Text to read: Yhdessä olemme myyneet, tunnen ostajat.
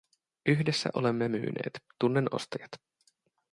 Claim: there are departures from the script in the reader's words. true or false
false